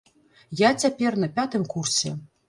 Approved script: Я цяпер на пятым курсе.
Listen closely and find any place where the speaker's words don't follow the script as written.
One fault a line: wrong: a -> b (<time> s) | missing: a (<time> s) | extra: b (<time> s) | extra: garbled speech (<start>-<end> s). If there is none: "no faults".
no faults